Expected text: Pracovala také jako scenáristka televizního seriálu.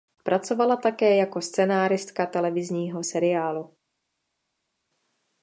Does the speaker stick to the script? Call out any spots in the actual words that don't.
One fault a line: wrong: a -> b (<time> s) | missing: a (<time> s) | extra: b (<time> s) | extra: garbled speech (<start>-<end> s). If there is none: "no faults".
no faults